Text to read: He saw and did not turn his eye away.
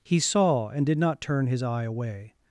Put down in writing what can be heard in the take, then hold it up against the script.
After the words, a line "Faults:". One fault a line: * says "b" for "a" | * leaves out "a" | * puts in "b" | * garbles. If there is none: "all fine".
He saw and did not turn his eye away.
Faults:
all fine